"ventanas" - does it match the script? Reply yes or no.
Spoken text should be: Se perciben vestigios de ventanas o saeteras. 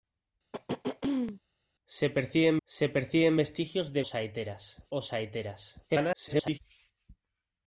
no